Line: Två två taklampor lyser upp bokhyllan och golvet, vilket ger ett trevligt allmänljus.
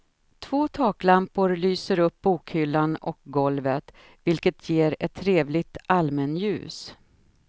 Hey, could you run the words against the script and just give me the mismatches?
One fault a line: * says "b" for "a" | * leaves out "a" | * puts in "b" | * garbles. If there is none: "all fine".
* leaves out "två"